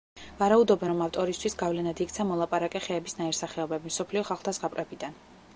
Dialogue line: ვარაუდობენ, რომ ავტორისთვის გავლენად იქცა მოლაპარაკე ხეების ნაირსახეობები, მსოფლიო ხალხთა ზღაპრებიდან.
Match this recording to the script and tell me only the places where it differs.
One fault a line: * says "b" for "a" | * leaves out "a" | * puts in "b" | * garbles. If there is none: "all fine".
all fine